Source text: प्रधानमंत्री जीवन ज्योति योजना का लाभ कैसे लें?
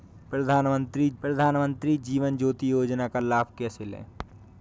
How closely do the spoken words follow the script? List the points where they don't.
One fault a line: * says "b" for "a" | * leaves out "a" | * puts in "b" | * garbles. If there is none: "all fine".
* puts in "प्रधानमंत्री"